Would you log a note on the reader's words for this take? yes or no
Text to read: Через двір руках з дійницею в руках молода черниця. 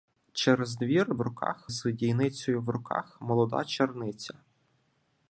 no